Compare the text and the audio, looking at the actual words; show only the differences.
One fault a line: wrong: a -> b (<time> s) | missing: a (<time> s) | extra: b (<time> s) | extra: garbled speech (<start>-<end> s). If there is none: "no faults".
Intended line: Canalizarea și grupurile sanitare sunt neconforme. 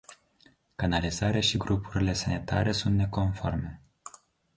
no faults